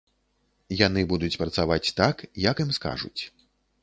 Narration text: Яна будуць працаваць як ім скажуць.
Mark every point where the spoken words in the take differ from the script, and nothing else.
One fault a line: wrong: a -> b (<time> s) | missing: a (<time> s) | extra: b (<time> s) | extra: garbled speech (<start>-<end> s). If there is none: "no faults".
wrong: Яна -> Яны (0.8 s)
extra: так (2.0 s)